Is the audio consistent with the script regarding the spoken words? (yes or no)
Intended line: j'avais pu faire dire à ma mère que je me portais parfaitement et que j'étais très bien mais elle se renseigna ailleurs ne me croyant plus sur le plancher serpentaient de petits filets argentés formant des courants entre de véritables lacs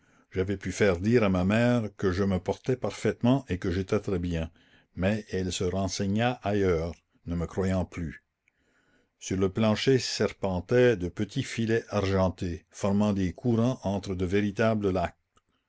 yes